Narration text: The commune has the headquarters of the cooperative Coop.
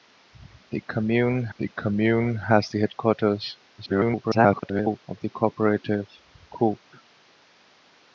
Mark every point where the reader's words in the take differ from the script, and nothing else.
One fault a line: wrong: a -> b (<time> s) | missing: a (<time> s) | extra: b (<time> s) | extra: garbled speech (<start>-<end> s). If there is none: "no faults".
extra: the commune (1.6 s)
extra: garbled speech (3.8-5.0 s)